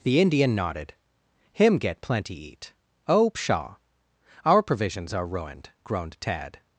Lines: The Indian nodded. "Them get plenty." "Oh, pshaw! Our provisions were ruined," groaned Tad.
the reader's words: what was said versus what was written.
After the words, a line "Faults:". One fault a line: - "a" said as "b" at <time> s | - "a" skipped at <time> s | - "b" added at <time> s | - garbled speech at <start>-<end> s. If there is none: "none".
The Indian nodded. "Him get plenty eat." "Oh, pshaw! Our provisions are ruined," groaned Tad.
Faults:
- "Them" said as "Him" at 1.5 s
- "eat" added at 2.3 s
- "were" said as "are" at 5.1 s